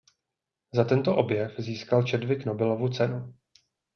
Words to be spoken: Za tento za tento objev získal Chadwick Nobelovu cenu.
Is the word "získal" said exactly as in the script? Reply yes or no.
yes